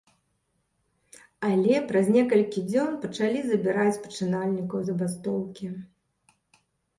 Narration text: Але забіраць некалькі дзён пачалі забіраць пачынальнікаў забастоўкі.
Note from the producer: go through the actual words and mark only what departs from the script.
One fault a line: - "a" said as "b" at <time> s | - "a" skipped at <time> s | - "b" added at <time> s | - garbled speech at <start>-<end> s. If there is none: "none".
- "забіраць" said as "праз" at 1.9 s